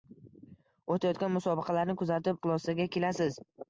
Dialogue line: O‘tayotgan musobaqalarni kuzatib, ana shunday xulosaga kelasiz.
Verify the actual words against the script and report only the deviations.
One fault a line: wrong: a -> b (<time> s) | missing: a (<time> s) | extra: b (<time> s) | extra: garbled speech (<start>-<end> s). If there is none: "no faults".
missing: ana shunday (2.4 s)